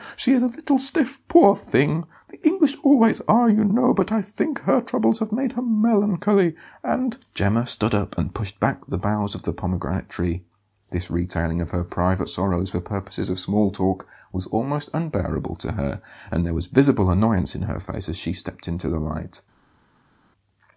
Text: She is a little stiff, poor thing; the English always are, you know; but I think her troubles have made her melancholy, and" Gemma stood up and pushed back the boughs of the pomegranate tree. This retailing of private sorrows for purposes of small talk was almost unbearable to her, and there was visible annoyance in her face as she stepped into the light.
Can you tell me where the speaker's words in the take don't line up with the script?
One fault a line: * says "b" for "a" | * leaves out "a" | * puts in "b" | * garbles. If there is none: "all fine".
* puts in "her"